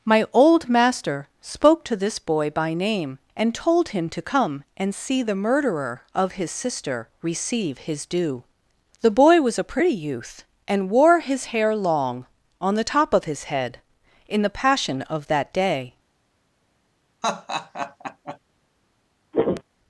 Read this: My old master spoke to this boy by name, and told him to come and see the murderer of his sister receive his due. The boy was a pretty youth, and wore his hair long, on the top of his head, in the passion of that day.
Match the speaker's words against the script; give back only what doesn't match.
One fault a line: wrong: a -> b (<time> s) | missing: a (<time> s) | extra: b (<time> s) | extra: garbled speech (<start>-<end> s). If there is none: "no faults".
no faults